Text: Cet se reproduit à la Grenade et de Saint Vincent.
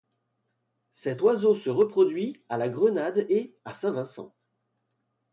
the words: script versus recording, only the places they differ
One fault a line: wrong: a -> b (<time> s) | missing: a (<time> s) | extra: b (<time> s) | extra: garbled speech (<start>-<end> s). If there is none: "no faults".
extra: oiseau (1.2 s)
wrong: de -> à (3.6 s)